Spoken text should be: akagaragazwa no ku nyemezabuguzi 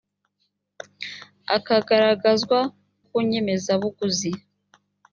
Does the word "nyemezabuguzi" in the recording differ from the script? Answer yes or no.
no